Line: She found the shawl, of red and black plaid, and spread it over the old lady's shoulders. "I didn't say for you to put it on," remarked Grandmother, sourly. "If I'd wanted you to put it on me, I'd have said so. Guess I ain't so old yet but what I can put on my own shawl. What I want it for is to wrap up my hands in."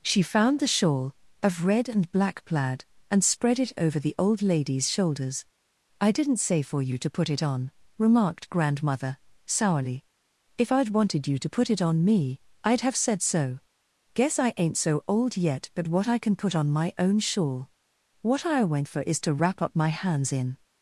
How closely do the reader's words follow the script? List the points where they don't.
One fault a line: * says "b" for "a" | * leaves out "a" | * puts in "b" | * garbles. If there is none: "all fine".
* says "went" for "want it"